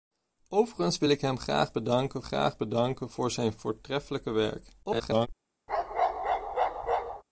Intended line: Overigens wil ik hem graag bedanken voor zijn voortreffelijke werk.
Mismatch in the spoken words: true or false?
true